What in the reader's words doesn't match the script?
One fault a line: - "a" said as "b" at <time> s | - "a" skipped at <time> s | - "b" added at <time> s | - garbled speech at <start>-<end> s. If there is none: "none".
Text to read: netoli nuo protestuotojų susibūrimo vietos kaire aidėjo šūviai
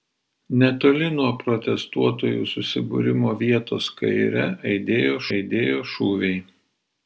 - "aidėjo" added at 5.4 s